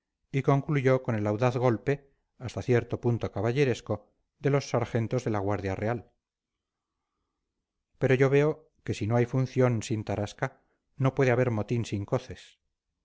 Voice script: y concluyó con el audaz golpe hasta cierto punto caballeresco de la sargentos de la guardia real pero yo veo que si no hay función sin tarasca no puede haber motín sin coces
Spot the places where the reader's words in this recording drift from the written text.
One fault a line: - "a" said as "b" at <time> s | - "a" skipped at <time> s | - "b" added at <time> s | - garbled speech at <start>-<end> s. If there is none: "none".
- "la" said as "los" at 4.5 s